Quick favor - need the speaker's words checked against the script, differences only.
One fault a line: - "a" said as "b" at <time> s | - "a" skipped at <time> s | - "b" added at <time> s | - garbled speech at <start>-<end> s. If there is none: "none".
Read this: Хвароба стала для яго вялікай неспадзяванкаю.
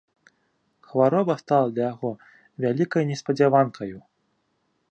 none